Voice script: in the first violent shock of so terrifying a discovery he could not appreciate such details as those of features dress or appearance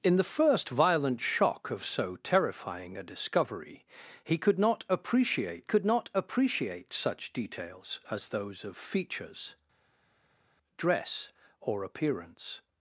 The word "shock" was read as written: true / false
true